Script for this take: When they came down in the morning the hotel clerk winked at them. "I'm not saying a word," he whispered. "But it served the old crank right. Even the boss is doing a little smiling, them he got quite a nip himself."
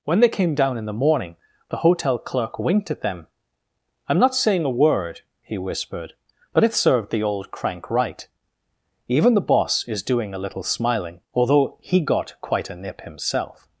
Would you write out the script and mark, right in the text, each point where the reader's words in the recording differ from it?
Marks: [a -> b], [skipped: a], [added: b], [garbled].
When they came down in the morning the hotel clerk winked at them. "I'm not saying a word," he whispered. "But it served the old crank right. Even the boss is doing a little smiling, [them -> although] he got quite a nip himself."